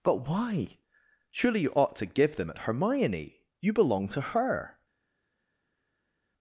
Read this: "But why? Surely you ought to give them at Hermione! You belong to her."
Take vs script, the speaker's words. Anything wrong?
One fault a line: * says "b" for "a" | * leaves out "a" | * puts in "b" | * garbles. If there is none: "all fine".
all fine